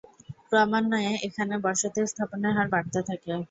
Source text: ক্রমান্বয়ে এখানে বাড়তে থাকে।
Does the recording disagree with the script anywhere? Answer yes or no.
yes